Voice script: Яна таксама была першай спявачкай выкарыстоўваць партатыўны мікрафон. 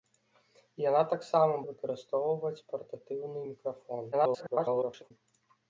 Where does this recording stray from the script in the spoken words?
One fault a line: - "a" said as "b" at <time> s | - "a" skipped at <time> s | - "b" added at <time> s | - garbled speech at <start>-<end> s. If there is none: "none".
- "была першай спявачкай" skipped at 1.6 s
- garbled speech at 4.1-5.1 s